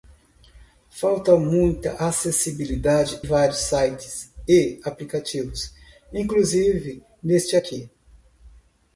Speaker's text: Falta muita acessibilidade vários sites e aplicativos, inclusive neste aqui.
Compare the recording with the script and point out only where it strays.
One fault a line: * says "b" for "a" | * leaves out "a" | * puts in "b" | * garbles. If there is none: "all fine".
all fine